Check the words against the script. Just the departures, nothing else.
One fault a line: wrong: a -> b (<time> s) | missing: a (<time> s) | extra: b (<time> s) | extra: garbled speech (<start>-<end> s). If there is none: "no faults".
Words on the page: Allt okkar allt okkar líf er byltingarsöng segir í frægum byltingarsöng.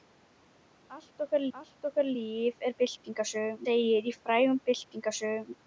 no faults